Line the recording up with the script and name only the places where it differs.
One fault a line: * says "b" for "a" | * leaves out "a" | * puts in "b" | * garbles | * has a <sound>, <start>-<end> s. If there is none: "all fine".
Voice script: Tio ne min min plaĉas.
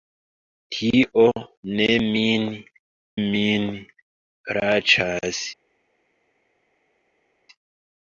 all fine